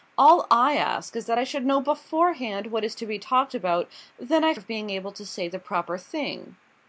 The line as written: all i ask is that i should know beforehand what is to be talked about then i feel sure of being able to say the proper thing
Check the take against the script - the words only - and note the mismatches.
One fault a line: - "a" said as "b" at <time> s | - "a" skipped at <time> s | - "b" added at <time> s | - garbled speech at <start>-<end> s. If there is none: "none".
- "feel sure" skipped at 4.5 s